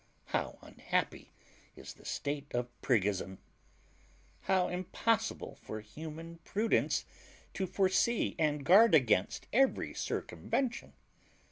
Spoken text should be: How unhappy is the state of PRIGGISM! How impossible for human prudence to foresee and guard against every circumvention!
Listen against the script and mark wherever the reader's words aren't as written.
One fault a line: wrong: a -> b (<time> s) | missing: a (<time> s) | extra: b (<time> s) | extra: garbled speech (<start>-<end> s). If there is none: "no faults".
no faults